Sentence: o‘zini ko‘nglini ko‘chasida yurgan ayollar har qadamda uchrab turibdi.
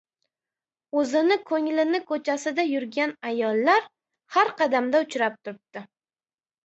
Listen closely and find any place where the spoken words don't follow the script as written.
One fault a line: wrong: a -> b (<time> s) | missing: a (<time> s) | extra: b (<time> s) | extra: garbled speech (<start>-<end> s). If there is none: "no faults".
no faults